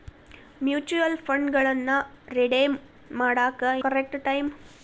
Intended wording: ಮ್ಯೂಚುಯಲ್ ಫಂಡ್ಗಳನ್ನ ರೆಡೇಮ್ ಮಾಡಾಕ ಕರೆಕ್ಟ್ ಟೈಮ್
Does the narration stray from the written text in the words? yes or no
no